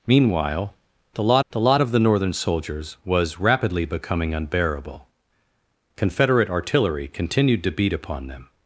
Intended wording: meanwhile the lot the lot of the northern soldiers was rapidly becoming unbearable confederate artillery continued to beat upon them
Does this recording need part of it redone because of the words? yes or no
no